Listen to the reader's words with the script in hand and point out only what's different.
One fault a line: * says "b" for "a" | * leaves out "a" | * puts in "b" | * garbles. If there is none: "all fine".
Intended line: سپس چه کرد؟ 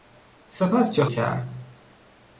all fine